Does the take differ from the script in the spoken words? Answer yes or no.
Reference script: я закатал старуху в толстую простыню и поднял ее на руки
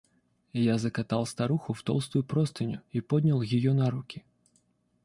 no